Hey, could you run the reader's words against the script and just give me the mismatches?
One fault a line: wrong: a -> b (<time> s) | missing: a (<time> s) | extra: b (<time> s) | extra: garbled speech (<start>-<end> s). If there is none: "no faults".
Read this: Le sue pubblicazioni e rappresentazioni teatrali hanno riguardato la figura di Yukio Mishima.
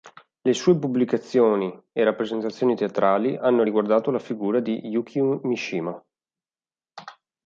no faults